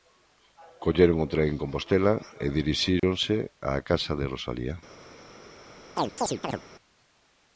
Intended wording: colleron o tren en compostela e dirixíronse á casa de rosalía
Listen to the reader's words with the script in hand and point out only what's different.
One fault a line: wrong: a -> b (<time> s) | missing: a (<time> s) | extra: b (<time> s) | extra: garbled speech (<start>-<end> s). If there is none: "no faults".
no faults